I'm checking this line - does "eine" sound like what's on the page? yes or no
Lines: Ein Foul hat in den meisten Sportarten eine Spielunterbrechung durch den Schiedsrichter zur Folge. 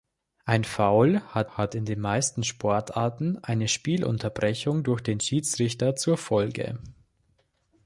yes